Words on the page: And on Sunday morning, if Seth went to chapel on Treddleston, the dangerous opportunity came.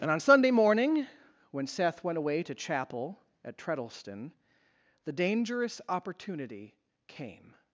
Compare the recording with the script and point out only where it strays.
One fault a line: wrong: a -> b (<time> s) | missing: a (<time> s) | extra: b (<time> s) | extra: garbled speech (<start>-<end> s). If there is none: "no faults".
wrong: if -> when (1.5 s)
extra: away (2.2 s)
wrong: on -> at (3.4 s)